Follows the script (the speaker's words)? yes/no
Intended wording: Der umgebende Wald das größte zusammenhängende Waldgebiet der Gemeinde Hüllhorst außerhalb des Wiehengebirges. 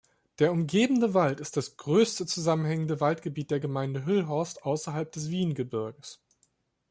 no